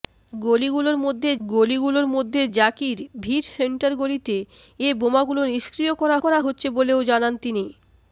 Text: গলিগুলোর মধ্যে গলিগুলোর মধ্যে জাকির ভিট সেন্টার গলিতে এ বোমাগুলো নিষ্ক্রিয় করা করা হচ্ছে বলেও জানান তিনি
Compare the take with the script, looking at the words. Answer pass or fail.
pass